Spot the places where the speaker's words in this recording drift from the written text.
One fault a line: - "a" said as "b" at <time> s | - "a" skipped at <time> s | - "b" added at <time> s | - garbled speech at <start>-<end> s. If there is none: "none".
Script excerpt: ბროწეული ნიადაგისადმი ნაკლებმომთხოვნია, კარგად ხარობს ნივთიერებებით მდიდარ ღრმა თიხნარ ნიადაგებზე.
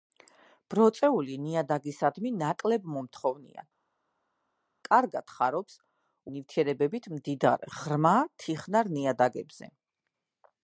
none